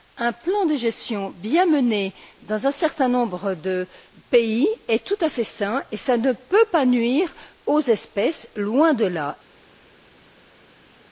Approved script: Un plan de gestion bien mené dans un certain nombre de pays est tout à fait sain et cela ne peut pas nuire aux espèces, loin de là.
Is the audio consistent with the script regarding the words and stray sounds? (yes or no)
yes